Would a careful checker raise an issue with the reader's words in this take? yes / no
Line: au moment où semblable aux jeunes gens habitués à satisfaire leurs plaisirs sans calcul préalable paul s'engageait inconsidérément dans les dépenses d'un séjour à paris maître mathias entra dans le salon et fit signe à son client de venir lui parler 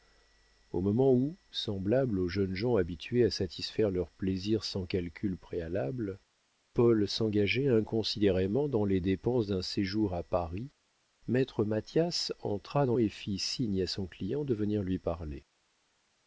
yes